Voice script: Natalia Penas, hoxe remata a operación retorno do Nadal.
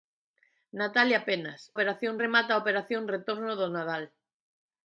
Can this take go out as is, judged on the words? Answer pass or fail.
fail